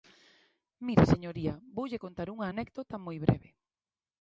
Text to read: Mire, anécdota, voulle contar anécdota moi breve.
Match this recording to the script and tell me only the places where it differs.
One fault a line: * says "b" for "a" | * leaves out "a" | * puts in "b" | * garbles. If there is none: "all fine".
* says "señoría" for "anécdota"
* puts in "unha"